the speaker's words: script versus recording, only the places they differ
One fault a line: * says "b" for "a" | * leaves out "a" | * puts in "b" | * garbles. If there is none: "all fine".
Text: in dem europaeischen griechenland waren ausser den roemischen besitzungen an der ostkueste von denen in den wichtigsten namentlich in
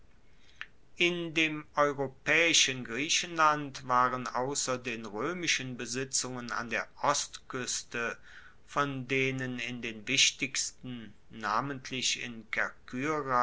all fine